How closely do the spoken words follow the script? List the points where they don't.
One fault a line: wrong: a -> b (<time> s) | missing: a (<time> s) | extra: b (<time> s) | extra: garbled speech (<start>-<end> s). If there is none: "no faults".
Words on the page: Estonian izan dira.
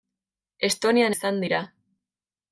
no faults